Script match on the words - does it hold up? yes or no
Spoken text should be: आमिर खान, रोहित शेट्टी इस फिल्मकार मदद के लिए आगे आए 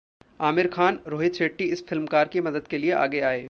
no